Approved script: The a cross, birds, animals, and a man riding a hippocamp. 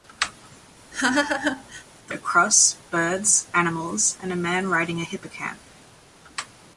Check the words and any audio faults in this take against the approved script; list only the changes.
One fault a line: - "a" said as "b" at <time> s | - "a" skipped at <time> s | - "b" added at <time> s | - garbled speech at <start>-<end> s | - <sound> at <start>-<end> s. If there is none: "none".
- laugh at 0.9-1.8 s